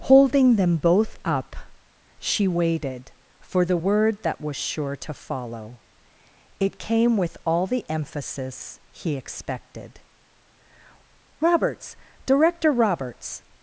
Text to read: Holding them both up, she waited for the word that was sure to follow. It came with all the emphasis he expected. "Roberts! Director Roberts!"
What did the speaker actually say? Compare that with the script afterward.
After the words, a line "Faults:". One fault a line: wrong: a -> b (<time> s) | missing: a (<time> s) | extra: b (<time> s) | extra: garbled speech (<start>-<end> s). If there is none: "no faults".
Holding them both up, she waited for the word that was sure to follow. It came with all the emphasis he expected. "Roberts! Director Roberts!"
Faults:
no faults